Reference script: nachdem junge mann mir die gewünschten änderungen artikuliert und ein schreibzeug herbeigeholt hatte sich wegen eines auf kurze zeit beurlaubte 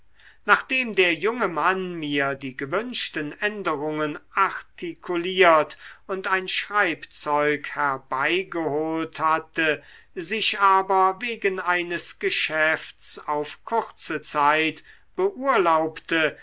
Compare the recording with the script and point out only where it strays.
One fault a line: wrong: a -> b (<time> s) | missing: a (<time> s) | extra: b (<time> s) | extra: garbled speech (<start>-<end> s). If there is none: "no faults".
extra: der (0.9 s)
extra: aber (10.6 s)
extra: geschäfts (12.2 s)